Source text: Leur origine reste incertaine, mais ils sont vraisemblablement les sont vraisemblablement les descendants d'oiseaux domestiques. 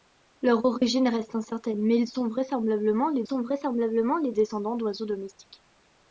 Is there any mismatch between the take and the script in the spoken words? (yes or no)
no